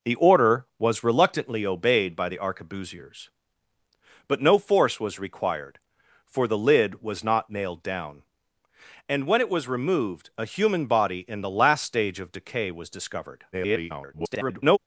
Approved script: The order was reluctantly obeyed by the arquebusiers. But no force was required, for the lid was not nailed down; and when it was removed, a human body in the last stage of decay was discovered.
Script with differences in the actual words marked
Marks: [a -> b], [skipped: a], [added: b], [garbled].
The order was reluctantly obeyed by the arquebusiers. But no force was required, for the lid was not nailed down; and when it was removed, a human body in the last stage of decay was discovered. [garbled]